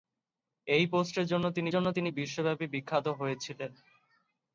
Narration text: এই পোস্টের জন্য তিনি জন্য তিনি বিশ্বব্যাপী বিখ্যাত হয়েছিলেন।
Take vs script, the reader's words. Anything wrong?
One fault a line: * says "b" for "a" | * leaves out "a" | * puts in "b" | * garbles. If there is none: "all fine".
all fine